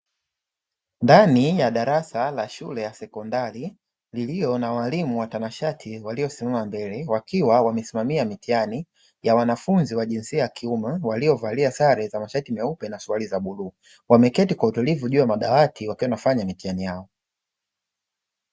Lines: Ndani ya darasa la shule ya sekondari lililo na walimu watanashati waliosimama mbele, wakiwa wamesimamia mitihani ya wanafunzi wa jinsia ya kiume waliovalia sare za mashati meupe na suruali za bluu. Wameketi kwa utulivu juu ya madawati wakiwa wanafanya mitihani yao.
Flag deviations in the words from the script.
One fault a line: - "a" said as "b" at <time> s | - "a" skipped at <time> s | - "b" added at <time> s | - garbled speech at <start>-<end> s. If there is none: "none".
none